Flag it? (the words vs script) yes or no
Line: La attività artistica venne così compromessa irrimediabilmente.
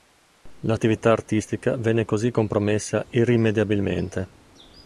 no